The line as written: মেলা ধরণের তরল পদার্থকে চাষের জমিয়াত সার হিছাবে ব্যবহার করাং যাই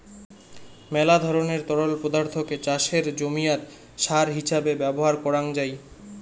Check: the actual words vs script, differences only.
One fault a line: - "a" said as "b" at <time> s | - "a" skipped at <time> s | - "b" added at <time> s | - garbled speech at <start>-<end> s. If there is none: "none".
none